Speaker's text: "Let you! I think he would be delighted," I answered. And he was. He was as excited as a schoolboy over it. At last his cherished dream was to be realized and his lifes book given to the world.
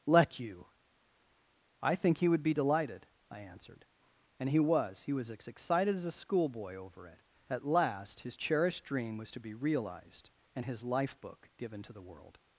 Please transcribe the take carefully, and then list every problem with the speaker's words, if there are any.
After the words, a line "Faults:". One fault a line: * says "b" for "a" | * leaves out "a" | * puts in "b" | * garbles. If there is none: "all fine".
"Let you! I think he would be delighted," I answered. And he was. He was as excited as a schoolboy over it. At last his cherished dream was to be realized and his life book given to the world.
Faults:
* says "life" for "lifes"